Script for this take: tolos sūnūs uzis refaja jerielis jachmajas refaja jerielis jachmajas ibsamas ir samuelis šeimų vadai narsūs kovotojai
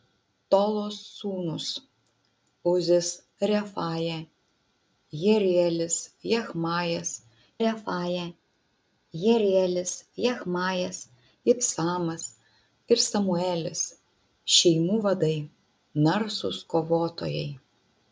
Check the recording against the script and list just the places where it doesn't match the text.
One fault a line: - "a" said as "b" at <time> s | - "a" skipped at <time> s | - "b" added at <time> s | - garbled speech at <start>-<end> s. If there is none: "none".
none